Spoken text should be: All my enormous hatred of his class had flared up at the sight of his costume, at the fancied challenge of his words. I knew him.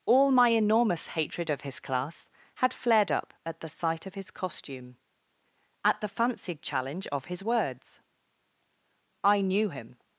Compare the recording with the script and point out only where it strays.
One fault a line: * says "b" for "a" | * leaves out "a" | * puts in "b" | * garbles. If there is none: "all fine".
all fine